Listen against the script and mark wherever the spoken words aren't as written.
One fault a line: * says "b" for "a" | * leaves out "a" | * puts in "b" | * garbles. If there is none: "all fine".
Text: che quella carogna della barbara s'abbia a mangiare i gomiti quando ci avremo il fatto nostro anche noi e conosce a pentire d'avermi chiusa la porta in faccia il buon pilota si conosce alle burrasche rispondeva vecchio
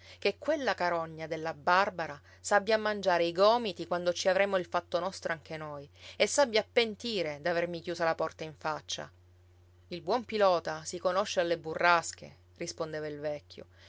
* says "s'abbia" for "conosce"
* puts in "il"